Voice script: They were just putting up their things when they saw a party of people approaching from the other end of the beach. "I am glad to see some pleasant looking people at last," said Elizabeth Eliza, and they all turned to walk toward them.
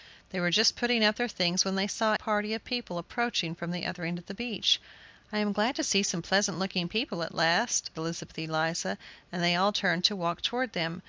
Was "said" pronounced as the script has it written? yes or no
no